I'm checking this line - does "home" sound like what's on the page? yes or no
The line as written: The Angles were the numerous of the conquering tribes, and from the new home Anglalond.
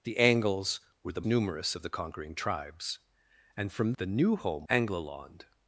yes